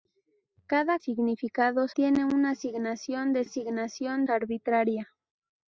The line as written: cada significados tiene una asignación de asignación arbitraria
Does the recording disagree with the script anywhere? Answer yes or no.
no